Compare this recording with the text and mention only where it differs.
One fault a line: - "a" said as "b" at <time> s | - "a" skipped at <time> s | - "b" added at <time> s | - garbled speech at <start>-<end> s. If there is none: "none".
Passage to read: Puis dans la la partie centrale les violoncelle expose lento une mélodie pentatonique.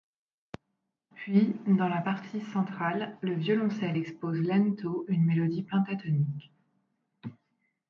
- "la" skipped at 2.0 s
- "les" said as "le" at 3.2 s